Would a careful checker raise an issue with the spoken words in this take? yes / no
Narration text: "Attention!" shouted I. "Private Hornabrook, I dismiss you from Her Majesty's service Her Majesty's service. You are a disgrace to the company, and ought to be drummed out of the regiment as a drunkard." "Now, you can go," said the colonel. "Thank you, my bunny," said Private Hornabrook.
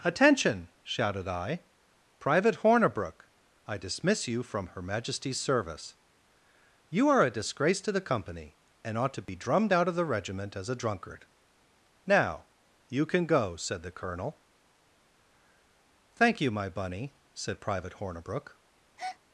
yes